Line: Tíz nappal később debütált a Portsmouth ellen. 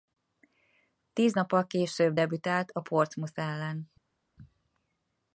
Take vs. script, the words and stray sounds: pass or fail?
pass